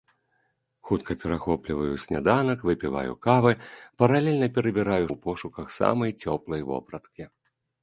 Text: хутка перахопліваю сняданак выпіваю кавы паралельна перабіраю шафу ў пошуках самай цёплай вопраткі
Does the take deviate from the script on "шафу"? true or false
true